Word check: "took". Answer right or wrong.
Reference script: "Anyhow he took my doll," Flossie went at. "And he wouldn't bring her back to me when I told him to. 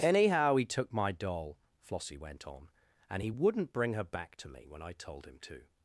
right